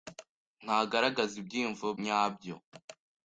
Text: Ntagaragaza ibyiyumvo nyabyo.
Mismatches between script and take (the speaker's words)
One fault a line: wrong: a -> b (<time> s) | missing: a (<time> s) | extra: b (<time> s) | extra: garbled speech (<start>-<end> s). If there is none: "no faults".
no faults